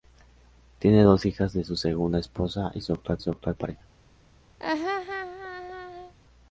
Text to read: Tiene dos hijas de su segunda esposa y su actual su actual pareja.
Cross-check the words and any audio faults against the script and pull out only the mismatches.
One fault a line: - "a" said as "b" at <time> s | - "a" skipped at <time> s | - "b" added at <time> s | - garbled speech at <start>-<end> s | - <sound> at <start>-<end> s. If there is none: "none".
- laugh at 4.6-6.1 s